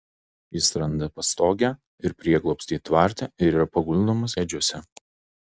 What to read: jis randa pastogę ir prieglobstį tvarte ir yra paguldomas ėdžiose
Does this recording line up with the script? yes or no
yes